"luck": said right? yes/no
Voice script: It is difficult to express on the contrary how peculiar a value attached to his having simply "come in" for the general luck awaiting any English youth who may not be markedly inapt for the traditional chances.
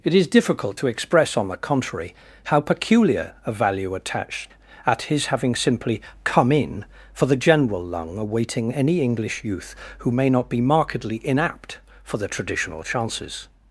no